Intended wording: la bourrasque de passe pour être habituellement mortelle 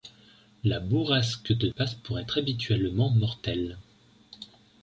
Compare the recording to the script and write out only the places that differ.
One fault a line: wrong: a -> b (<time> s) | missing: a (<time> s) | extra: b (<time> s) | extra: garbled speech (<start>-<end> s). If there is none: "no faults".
no faults